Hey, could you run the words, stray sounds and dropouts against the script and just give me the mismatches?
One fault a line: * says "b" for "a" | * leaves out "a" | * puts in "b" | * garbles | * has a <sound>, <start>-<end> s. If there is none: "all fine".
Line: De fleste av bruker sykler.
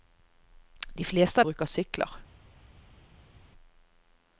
all fine